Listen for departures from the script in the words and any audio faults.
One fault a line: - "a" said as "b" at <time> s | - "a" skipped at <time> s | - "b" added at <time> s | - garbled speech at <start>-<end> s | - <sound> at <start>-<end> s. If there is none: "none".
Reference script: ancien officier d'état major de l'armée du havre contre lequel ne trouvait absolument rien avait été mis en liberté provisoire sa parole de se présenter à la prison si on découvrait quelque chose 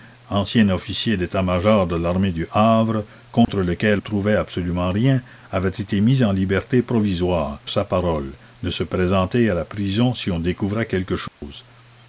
- dropout at 3.4-3.5 s
- dropout at 11.3-11.4 s